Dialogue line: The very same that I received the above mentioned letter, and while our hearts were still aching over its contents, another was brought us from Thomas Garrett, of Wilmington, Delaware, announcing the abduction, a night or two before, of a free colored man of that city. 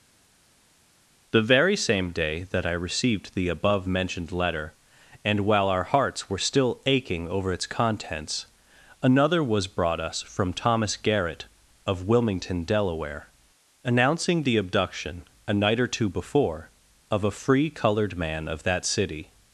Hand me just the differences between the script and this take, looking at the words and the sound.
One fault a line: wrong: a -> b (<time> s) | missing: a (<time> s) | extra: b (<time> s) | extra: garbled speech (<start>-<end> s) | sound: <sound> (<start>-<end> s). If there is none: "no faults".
extra: day (2.1 s)